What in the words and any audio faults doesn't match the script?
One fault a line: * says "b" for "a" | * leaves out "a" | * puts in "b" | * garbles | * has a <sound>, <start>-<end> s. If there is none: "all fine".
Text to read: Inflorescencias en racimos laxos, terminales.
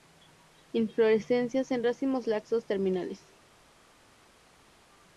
all fine